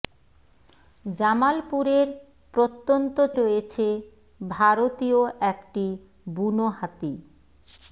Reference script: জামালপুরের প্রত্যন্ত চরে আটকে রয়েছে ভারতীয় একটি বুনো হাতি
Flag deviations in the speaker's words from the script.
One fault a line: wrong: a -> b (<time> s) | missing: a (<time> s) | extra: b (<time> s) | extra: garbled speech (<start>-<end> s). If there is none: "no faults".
missing: চরে আটকে (3.2 s)